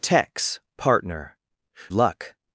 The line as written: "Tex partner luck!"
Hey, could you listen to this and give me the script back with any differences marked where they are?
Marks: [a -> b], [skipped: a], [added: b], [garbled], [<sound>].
"Tex partner luck!"